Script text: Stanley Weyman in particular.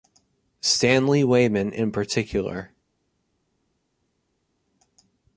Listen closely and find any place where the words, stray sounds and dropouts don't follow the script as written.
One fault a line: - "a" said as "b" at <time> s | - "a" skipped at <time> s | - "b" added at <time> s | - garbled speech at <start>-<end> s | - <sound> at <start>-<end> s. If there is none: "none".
none